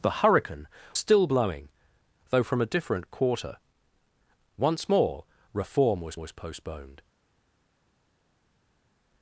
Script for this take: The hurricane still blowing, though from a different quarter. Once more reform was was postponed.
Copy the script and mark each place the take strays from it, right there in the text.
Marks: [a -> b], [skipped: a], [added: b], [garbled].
The hurricane still blowing, though from a different quarter. Once more reform was was postponed.